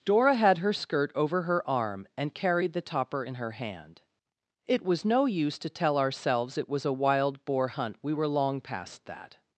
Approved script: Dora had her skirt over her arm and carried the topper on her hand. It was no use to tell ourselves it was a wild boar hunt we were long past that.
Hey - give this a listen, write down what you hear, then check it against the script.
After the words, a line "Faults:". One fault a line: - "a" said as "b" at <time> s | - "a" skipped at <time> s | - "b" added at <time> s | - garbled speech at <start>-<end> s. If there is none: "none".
Dora had her skirt over her arm and carried the topper in her hand. It was no use to tell ourselves it was a wild boar hunt we were long past that.
Faults:
- "on" said as "in" at 3.2 s